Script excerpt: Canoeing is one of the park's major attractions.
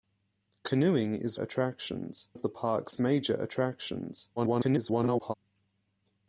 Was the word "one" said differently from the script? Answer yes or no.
yes